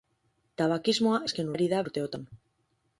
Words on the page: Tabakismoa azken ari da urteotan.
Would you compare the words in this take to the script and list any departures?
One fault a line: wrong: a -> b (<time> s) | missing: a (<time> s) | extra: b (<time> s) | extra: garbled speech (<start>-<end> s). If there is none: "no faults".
no faults